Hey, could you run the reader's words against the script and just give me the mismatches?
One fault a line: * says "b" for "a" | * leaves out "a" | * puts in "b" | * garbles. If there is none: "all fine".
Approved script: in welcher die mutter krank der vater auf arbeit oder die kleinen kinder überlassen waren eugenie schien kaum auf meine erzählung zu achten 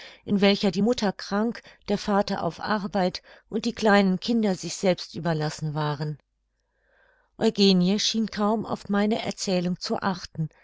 * says "und" for "oder"
* puts in "sich selbst"